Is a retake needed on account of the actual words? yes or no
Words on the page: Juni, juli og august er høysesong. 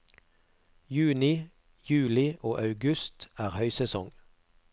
no